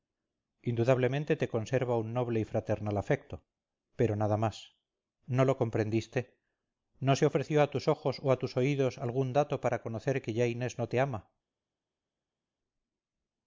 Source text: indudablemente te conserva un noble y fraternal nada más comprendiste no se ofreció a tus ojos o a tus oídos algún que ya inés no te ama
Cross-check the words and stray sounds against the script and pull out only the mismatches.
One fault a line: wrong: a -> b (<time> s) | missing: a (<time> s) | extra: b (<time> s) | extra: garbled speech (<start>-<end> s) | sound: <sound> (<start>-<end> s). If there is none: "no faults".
extra: afecto pero (3.0 s)
extra: no lo (5.3 s)
extra: dato para conocer (9.3 s)